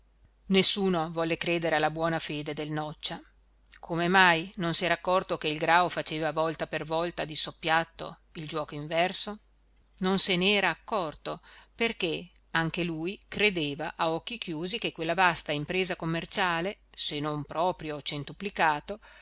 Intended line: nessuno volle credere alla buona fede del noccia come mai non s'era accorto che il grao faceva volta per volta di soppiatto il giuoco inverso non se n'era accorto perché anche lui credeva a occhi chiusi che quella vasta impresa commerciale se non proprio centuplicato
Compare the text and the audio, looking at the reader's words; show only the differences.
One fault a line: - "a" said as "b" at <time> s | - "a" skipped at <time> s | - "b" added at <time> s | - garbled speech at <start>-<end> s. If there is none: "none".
none